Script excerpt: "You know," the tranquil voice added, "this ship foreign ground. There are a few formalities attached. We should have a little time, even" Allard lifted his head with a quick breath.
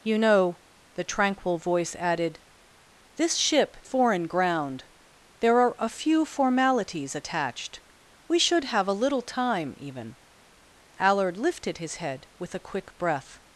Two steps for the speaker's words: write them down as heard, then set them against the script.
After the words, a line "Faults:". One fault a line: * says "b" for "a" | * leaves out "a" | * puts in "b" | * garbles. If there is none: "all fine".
"You know," the tranquil voice added, "this ship foreign ground. There are a few formalities attached. We should have a little time, even" Allard lifted his head with a quick breath.
Faults:
all fine